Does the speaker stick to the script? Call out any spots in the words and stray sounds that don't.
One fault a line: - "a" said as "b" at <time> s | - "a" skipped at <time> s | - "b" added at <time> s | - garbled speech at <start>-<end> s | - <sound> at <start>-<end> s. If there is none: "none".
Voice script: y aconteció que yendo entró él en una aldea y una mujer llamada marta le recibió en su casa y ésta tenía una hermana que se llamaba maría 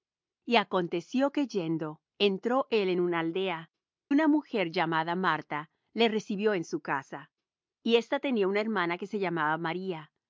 - "y" skipped at 3.7 s